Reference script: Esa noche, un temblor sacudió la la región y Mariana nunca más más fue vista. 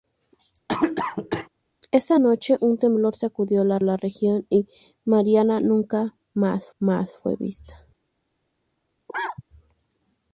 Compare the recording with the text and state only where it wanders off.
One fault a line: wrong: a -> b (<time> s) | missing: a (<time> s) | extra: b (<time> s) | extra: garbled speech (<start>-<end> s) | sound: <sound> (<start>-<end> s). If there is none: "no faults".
sound: cough (0.7-1.5 s)
sound: cough (9.1-9.4 s)